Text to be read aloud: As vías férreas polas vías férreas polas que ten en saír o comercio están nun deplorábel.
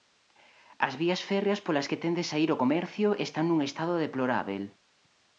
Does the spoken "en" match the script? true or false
false